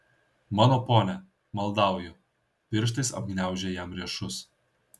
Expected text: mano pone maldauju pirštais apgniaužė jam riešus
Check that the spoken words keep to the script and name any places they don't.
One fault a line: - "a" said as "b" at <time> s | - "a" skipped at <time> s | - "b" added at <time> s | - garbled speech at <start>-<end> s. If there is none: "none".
none